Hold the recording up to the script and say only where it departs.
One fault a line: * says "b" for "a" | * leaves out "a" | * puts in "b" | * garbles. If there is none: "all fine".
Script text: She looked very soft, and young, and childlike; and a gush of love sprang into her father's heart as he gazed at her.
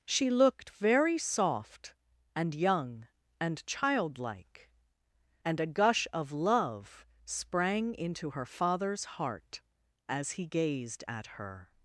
all fine